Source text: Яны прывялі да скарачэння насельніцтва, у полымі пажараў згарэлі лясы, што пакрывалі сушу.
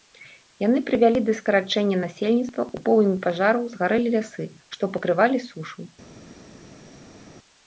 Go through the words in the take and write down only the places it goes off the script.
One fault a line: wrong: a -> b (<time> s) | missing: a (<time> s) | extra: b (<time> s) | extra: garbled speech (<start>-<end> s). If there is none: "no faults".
no faults